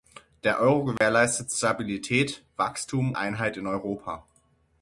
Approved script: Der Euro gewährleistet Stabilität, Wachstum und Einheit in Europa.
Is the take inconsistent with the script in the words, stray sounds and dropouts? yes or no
yes